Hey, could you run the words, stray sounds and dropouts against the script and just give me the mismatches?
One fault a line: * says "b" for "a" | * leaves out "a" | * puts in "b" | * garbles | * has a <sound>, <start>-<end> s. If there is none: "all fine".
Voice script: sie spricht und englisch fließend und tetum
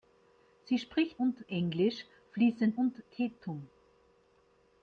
all fine